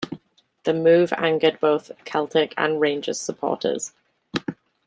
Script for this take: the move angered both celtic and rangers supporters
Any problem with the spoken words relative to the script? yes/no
no